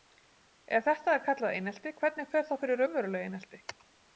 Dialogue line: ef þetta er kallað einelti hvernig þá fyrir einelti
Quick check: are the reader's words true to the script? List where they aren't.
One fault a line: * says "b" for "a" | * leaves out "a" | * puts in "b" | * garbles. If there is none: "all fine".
* puts in "fer"
* puts in "raunverulegu"